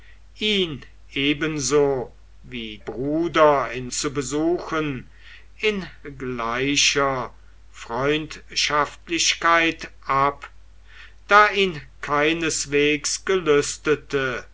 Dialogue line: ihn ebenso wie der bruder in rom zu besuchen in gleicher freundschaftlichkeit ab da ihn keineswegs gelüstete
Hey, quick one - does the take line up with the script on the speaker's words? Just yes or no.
no